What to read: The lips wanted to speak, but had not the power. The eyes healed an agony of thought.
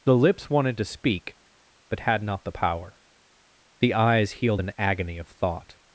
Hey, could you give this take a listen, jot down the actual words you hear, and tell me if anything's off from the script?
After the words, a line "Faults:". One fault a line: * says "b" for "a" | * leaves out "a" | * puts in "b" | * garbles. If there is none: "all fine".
The lips wanted to speak, but had not the power. The eyes healed an agony of thought.
Faults:
all fine